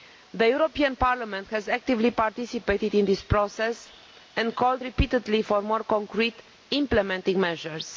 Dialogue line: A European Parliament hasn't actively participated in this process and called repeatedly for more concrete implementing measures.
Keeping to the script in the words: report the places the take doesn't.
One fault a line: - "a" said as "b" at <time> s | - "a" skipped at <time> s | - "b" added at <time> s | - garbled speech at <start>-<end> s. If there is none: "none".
- "A" said as "The" at 0.3 s
- "hasn't" said as "has" at 1.5 s